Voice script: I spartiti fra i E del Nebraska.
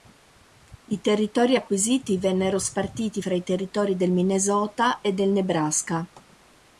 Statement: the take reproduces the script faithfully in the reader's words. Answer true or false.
false